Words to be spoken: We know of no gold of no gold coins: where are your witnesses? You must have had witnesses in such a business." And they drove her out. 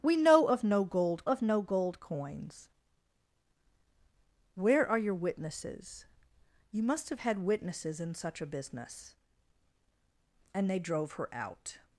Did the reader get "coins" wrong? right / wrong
right